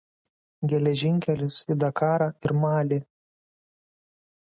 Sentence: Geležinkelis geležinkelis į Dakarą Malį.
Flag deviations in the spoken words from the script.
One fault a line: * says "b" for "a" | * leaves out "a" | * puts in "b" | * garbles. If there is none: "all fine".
* leaves out "geležinkelis"
* puts in "ir"